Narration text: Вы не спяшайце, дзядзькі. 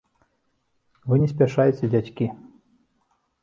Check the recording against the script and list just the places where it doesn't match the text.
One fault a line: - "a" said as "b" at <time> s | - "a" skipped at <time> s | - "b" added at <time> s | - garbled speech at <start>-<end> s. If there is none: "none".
none